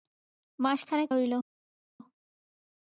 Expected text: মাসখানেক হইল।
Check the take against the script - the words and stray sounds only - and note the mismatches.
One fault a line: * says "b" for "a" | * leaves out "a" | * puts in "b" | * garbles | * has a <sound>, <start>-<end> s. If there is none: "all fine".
all fine